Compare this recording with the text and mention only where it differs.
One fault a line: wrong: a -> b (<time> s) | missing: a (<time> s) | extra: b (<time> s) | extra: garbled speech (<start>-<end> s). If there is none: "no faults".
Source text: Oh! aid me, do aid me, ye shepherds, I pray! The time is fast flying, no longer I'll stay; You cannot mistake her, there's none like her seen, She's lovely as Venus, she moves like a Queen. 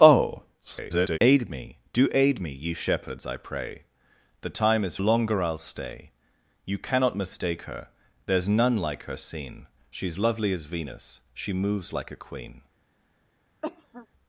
extra: garbled speech (0.6-1.2 s)
missing: fast flying no (5.0 s)